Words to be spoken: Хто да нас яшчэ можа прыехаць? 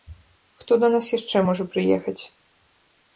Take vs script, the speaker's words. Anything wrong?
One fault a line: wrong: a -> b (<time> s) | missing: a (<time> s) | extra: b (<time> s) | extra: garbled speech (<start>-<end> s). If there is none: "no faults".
no faults